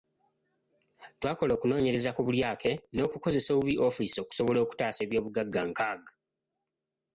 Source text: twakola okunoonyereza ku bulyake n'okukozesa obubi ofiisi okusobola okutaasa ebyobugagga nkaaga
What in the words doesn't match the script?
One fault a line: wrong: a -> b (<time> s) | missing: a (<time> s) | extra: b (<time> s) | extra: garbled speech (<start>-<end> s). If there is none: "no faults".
no faults